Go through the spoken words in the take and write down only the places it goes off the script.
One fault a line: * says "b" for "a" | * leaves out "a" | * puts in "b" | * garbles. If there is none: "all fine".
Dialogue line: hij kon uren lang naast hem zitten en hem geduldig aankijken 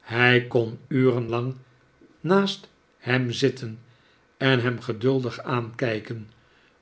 all fine